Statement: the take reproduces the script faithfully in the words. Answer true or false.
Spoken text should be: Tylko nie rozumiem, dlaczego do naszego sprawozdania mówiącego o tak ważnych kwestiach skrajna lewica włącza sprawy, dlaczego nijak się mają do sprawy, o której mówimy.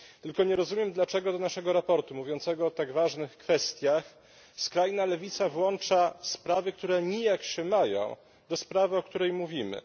false